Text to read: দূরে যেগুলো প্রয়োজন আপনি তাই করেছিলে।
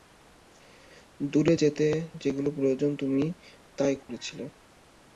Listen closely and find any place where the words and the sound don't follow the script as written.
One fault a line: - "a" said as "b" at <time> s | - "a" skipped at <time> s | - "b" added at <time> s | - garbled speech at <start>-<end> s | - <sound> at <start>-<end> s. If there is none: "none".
- "যেতে" added at 1.5 s
- "আপনি" said as "তুমি" at 3.0 s
- dropout at 4.0-4.1 s